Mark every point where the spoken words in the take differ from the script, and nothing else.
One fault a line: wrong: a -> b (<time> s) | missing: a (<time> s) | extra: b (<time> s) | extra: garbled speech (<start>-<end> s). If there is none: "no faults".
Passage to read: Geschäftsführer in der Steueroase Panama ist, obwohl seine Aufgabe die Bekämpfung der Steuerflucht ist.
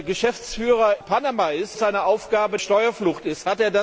missing: in der Steueroase (1.0 s)
missing: obwohl (1.8 s)
missing: die Bekämpfung der (2.6 s)